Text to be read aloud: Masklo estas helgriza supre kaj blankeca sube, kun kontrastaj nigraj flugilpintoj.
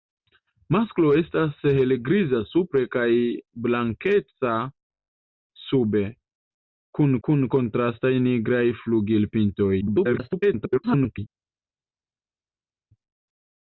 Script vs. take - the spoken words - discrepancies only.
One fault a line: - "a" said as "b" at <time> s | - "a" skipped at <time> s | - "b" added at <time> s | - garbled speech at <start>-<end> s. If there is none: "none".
- "kun" added at 7.3 s
- garbled speech at 9.8-11.2 s